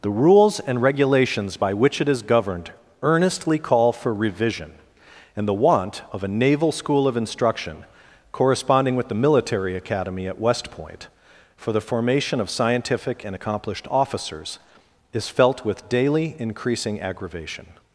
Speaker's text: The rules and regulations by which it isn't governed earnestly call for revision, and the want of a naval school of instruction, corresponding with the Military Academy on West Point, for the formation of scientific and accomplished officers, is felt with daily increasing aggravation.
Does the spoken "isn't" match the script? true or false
false